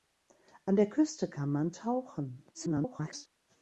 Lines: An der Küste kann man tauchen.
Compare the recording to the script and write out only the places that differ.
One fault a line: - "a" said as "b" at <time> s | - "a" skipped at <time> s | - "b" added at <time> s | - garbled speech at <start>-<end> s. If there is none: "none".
- garbled speech at 2.5-3.3 s